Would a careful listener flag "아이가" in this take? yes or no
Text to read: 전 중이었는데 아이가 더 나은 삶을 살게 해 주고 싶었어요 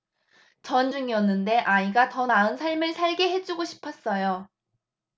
no